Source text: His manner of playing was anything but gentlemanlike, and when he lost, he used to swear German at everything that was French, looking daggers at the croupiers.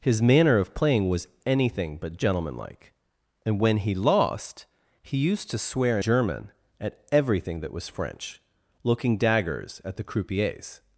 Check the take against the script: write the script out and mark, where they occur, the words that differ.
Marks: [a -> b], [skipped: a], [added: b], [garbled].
His manner of playing was anything but gentlemanlike, and when he lost, he used to swear German at everything that was French, looking daggers at the croupiers.